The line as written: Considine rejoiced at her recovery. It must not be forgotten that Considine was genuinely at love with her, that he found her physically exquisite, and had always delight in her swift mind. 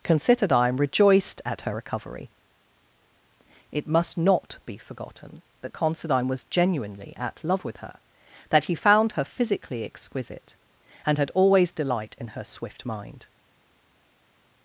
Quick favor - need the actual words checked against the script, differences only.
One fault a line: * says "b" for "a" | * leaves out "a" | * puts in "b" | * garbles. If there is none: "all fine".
all fine